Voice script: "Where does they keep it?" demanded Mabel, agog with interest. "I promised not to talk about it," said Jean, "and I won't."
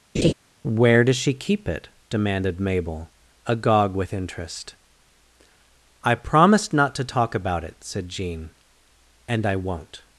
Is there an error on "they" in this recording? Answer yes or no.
yes